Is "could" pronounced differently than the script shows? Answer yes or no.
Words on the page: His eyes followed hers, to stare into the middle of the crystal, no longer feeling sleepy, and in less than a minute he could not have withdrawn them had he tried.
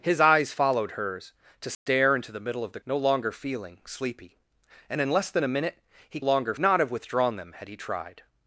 yes